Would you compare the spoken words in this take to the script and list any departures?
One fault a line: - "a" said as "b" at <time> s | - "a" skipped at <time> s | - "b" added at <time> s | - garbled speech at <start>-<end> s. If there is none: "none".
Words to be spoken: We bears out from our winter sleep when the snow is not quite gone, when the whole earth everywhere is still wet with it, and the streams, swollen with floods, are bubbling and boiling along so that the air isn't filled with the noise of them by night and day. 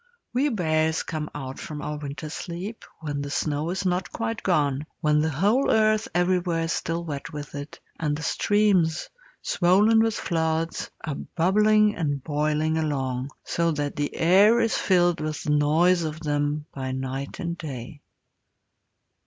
- "come" added at 1.0 s
- "isn't" said as "is" at 14.6 s